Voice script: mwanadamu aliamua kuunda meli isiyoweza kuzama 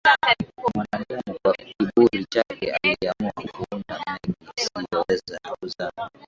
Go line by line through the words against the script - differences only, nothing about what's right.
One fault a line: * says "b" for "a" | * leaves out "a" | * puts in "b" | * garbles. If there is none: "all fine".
* puts in "kwa kiburi chake"